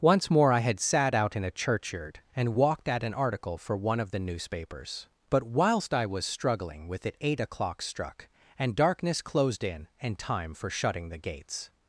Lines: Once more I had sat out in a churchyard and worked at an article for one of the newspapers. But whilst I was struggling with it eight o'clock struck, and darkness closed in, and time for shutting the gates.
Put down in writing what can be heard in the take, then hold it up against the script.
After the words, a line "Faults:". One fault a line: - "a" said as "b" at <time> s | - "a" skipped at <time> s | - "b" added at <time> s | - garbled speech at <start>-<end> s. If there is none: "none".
Once more I had sat out in a churchyard and walked at an article for one of the newspapers. But whilst I was struggling with it eight o'clock struck, and darkness closed in, and time for shutting the gates.
Faults:
- "worked" said as "walked" at 2.5 s